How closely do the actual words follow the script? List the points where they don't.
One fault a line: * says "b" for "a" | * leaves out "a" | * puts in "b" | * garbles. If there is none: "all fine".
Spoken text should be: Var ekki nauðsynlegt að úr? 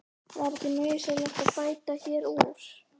* puts in "bæta hér"